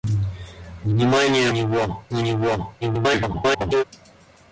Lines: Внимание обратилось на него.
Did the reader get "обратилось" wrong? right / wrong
wrong